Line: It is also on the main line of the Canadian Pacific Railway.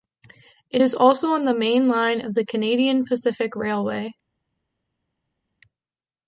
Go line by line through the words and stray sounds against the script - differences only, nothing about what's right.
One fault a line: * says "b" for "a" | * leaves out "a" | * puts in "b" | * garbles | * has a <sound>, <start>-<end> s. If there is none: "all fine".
all fine